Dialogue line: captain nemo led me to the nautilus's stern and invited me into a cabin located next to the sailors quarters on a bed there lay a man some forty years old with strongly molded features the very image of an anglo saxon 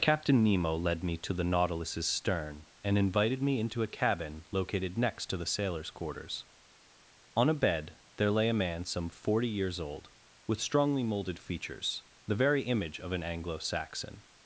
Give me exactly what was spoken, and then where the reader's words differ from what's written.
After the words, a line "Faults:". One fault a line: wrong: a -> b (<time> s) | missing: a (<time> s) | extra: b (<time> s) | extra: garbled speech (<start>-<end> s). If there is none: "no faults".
captain nemo led me to the nautilus's stern and invited me into a cabin located next to the sailors quarters on a bed there lay a man some forty years old with strongly molded features the very image of an anglo saxon
Faults:
no faults